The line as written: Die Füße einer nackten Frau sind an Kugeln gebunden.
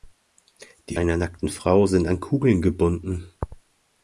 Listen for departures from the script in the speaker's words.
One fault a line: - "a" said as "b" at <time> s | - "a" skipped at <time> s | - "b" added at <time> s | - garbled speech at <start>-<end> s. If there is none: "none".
- "Füße" skipped at 1.0 s